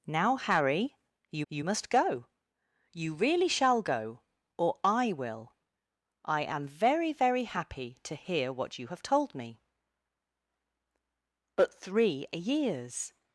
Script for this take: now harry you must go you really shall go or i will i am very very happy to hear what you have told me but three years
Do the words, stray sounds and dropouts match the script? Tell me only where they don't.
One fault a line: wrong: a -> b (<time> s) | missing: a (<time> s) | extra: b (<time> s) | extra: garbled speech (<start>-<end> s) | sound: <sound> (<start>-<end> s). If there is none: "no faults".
extra: you (1.5 s)